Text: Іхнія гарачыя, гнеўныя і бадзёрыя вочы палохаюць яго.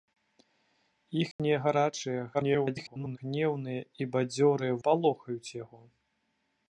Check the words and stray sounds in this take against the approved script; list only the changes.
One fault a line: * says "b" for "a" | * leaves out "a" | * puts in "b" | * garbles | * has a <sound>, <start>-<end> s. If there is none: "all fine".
* has a dropout, 1.3-1.4 s
* garbles
* leaves out "вочы"